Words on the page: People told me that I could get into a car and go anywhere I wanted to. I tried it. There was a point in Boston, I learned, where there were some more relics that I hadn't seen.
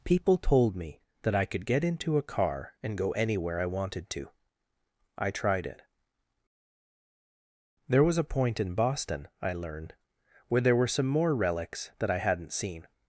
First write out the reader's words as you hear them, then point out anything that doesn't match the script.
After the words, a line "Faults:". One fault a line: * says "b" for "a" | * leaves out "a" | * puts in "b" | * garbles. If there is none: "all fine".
People told me that I could get into a car and go anywhere I wanted to. I tried it. There was a point in Boston, I learned, where there were some more relics that I hadn't seen.
Faults:
all fine